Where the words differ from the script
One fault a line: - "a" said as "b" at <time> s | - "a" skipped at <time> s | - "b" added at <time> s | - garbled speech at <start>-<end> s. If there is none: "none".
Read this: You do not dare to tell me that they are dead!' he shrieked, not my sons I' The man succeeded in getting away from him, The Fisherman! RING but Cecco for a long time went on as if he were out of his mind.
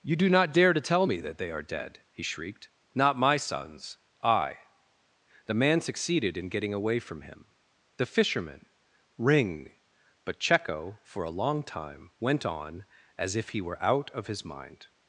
none